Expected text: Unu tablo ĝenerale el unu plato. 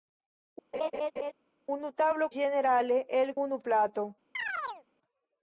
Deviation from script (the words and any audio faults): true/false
true